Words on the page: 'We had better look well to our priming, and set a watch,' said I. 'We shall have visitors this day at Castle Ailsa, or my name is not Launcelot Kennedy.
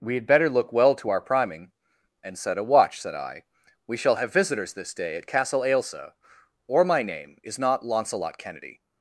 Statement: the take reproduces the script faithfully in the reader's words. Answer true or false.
true